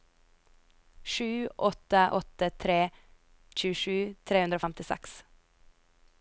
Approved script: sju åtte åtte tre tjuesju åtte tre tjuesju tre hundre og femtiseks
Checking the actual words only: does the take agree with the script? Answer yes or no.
no